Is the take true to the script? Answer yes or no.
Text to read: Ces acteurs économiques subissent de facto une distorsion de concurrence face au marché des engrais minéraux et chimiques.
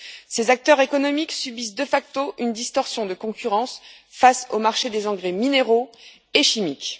yes